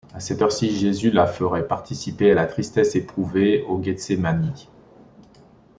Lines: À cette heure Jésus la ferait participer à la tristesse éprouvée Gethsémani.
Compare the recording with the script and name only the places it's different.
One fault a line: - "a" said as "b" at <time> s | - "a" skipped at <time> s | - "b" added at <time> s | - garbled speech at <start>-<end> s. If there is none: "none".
- "ci" added at 0.5 s
- "au" added at 3.6 s